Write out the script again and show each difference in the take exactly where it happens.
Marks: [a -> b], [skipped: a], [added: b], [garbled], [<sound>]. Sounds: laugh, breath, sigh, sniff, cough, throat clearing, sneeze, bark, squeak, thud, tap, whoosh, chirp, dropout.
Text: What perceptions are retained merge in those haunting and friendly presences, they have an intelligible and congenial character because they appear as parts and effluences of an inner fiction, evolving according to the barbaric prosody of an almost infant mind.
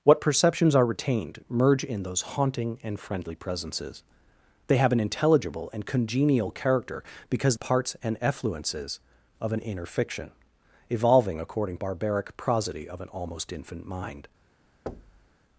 What perceptions are retained merge in those haunting and friendly presences, they have an intelligible and congenial character because [skipped: they appear as] parts and effluences of an inner fiction, evolving according [skipped: to the] barbaric prosody of an almost infant mind. [thud]